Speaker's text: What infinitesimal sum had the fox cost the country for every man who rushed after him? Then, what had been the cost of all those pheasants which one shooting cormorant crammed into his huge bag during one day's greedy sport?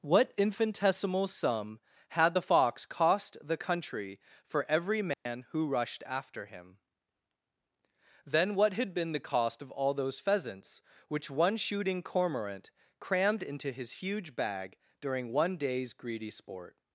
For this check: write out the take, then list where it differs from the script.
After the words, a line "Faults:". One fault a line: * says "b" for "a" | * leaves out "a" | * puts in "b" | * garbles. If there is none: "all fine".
What infinitesimal sum had the fox cost the country for every man who rushed after him? Then, what had been the cost of all those pheasants which one shooting cormorant crammed into his huge bag during one day's greedy sport?
Faults:
all fine